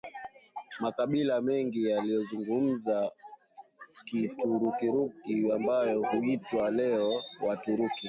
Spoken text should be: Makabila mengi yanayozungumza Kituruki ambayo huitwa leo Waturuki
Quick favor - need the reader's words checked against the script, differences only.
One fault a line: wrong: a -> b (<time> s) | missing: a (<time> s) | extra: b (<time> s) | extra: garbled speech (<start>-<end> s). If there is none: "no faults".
no faults